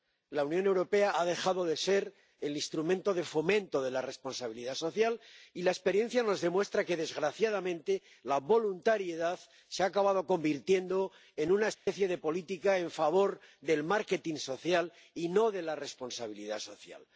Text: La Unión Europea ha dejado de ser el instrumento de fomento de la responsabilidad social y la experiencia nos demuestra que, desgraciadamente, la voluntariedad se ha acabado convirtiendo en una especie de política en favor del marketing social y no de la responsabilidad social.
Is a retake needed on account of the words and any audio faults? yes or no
yes